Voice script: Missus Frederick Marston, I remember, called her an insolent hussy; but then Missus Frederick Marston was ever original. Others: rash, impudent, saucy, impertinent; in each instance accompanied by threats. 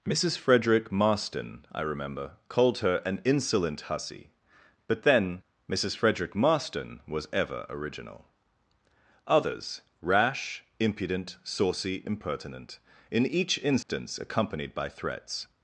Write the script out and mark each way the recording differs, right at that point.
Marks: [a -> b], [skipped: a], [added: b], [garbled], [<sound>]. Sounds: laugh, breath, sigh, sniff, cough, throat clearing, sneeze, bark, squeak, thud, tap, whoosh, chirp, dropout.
Missus Frederick Marston, I remember, called her an insolent hussy; but then Missus Frederick Marston was ever original. Others: rash, impudent, saucy, impertinent; in each instance [dropout] accompanied by threats.